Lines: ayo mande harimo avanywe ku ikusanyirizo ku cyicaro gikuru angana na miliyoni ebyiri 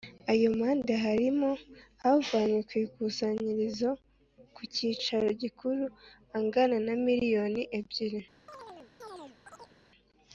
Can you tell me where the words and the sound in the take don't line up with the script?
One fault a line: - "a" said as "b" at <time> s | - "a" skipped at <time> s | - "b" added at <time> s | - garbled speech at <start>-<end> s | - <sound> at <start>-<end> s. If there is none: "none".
- chirp at 8.5-9.8 s